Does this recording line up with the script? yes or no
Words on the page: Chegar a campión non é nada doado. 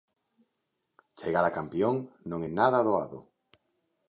yes